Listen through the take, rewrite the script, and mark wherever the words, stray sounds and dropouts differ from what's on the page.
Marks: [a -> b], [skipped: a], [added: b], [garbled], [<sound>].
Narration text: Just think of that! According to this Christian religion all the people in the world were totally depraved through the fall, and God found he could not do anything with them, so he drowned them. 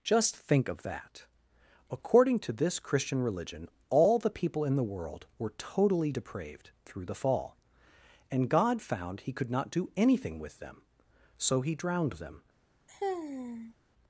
Just think of that! According to this Christian religion all the people in the world were totally depraved through the fall, and God found he could not do anything with them, so he drowned them. [sigh]